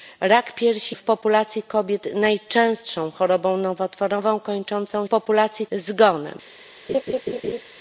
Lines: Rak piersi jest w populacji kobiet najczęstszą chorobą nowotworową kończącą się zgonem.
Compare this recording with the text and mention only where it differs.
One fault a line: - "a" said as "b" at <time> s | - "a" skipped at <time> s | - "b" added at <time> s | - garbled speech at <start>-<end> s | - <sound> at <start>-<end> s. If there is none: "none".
- "jest" skipped at 0.9 s
- "się" said as "populacji" at 5.1 s
- laugh at 6.9-7.6 s